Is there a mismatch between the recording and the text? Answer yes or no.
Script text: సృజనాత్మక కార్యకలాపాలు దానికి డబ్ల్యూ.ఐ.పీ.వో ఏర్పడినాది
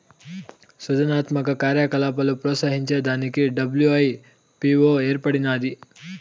yes